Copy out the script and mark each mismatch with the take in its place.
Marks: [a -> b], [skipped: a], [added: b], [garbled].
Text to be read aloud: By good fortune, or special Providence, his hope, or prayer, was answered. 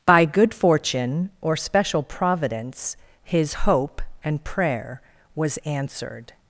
By good fortune, or special Providence, his hope, [or -> and] prayer, was answered.